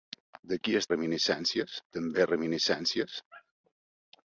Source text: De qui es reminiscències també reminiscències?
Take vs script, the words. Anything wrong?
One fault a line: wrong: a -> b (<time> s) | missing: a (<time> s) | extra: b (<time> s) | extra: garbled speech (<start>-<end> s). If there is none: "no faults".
no faults